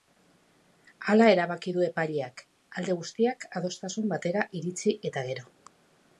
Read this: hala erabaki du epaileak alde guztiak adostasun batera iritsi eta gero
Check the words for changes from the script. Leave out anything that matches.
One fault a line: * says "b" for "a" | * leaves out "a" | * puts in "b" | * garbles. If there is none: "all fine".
all fine